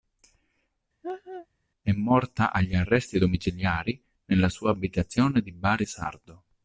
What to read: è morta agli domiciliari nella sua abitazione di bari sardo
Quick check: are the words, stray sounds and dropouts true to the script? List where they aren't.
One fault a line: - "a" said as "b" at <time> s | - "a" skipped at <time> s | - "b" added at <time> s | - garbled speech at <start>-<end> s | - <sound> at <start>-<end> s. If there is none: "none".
- laugh at 1.0-1.5 s
- "arresti" added at 2.7 s